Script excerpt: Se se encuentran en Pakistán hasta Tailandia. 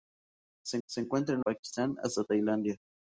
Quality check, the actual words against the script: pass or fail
pass